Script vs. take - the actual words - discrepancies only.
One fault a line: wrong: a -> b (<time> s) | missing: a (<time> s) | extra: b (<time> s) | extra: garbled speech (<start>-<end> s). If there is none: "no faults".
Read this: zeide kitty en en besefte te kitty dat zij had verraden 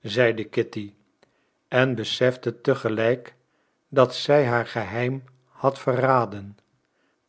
missing: en (2.0 s)
wrong: kitty -> gelijk (2.8 s)
extra: haar geheim (4.5 s)